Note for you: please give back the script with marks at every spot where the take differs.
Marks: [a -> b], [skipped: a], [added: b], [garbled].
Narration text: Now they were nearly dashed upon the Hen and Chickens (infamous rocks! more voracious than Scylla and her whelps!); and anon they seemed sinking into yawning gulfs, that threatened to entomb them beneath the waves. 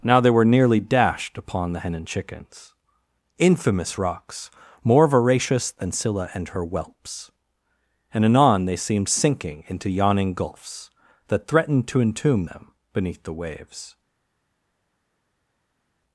Now they were nearly dashed upon the Hen and Chickens (infamous rocks! more voracious than Scylla and her whelps!); and anon they seemed sinking into yawning gulfs, that threatened to entomb them beneath the waves.